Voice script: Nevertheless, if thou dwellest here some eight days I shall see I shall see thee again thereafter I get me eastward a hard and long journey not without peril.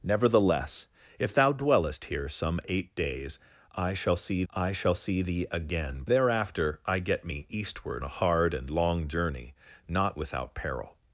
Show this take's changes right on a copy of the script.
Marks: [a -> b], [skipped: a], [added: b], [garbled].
Nevertheless, if thou dwellest here some eight days I shall see I shall see thee again thereafter I get me eastward a hard and long journey not without peril.